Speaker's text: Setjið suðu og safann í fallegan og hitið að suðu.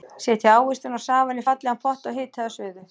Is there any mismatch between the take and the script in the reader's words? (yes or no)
yes